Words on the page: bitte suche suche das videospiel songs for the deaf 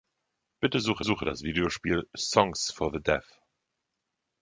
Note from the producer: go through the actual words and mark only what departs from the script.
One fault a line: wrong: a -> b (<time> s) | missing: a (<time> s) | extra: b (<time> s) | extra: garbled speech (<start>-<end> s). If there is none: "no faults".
no faults